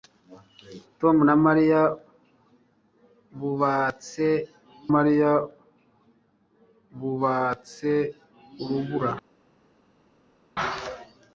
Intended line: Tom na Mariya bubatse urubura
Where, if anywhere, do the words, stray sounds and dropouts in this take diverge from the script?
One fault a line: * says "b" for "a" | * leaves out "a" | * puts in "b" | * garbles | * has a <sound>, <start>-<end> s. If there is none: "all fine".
* puts in "Mariya bubatse"